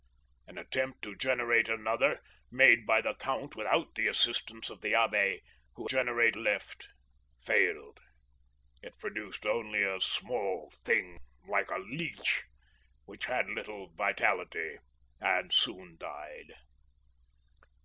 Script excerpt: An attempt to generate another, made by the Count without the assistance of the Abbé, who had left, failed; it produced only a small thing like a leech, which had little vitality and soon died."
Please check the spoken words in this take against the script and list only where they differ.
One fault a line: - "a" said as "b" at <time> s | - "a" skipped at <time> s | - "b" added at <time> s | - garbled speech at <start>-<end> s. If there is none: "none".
- "had" said as "generate" at 5.8 s